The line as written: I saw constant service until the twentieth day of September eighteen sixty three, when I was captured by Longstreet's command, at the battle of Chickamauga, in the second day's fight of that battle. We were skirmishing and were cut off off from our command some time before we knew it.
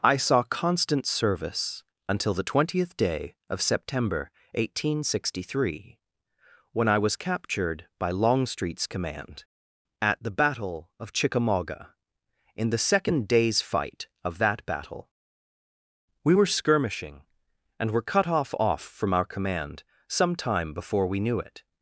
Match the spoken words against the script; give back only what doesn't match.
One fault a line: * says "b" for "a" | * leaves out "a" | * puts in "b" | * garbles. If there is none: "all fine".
all fine